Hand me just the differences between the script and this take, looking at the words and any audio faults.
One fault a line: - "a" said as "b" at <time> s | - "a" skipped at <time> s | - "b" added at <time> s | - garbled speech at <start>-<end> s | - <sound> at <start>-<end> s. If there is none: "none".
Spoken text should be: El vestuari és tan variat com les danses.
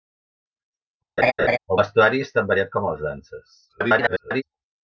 - laugh at 1.2-1.6 s
- garbled speech at 3.7-4.4 s